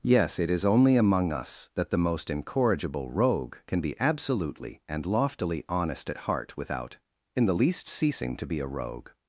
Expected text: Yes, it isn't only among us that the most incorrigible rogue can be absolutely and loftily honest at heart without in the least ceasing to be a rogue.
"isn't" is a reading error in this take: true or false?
true